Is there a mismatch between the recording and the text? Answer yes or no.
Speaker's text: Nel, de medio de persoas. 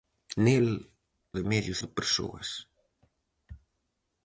no